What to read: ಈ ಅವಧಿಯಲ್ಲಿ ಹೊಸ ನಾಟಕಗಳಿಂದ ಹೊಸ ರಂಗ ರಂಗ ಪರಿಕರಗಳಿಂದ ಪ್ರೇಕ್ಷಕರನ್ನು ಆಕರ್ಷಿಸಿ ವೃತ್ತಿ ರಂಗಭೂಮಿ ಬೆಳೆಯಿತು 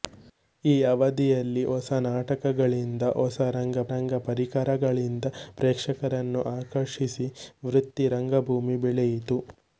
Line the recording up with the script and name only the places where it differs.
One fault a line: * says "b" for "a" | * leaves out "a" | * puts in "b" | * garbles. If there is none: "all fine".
all fine